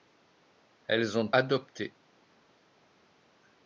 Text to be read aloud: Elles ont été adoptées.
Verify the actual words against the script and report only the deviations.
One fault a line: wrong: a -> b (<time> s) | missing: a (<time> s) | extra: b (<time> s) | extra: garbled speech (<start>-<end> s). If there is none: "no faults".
missing: été (1.3 s)